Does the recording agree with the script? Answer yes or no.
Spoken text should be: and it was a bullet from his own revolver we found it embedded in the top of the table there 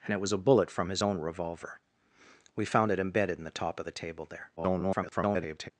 no